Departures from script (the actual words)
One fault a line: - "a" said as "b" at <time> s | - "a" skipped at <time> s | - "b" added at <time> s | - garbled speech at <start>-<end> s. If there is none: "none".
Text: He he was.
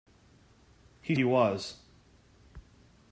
none